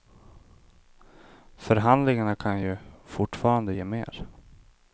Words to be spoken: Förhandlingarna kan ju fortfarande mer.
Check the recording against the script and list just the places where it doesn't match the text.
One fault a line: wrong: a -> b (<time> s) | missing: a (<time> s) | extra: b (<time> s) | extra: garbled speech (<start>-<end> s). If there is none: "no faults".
extra: ge (3.7 s)